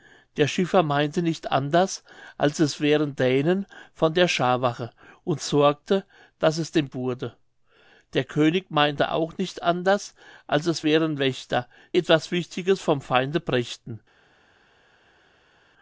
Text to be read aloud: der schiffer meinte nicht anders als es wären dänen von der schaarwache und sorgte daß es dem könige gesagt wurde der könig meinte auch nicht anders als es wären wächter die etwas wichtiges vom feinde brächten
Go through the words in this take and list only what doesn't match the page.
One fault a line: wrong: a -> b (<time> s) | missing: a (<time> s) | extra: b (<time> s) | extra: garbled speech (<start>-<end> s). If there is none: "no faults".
missing: könige gesagt (6.9 s)
missing: die (11.7 s)